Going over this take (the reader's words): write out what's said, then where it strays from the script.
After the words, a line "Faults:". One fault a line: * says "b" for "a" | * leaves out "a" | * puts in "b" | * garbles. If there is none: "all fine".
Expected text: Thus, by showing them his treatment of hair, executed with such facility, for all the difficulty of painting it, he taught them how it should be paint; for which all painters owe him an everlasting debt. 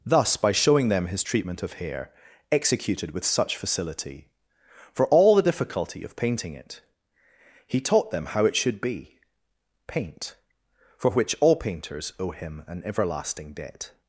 Thus, by showing them his treatment of hair, executed with such facility, for all the difficulty of painting it, he taught them how it should be paint; for which all painters owe him an everlasting debt.
Faults:
all fine